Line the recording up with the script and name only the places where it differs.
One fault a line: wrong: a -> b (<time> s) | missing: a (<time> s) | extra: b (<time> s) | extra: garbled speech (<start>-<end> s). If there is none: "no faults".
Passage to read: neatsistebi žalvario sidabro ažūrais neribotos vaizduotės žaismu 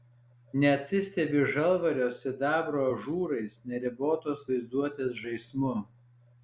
no faults